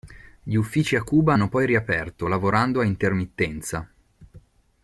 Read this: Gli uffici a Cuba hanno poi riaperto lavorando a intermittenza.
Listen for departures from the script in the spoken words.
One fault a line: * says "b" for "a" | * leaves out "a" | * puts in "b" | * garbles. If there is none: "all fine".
all fine